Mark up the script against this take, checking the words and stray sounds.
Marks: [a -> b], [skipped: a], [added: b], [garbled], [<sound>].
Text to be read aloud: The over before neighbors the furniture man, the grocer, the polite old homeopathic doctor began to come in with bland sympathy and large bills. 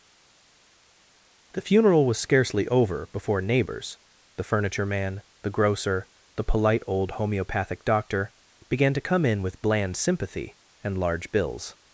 The [added: funeral was scarcely] over before neighbors the furniture man, the grocer, the polite old homeopathic doctor began to come in with bland sympathy and large bills.